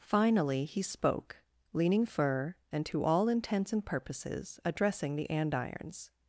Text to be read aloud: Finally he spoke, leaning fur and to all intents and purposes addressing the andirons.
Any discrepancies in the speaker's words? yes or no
no